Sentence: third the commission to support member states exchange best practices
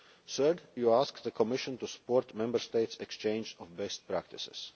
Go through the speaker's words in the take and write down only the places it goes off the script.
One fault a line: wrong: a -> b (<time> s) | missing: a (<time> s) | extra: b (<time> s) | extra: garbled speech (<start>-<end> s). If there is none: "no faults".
extra: you asked (0.8 s)
extra: of (3.6 s)